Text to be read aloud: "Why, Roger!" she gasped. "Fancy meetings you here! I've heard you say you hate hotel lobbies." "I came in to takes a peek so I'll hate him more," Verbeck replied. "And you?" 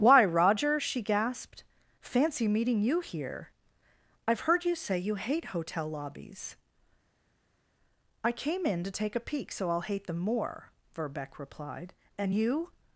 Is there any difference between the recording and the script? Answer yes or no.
yes